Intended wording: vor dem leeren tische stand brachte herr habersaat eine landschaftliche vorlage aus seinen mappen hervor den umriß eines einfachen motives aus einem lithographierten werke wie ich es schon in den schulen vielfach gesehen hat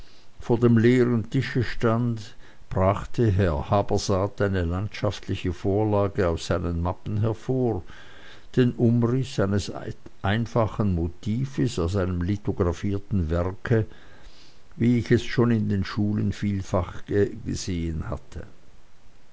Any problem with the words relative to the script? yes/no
yes